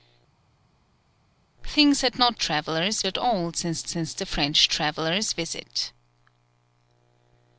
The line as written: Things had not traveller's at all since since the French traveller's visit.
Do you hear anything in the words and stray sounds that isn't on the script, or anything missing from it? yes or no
no